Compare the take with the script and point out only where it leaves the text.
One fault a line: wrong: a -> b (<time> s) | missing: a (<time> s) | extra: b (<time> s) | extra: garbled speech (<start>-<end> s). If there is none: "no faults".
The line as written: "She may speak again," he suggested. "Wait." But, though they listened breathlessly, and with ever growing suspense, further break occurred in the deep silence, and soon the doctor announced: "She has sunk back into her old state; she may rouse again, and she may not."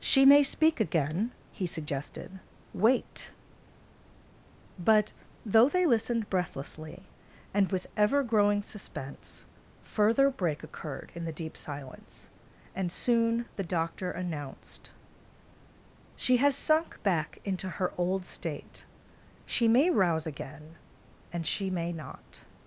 no faults